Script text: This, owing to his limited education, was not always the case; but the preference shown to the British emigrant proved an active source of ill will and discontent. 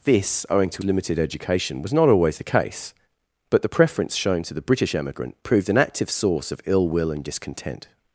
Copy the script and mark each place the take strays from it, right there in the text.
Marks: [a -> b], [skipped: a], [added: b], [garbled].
This, owing to [skipped: his] limited education, was not always the case; but the preference shown to the British emigrant proved an active source of ill will and discontent.